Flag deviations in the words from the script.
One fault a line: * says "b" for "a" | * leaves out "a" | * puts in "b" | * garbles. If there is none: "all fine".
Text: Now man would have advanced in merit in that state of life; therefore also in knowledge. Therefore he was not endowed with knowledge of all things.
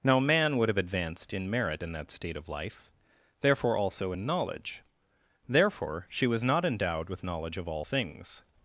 * says "she" for "he"